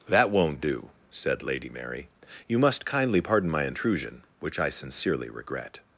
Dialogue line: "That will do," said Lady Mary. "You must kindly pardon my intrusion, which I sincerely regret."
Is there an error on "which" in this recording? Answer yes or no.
no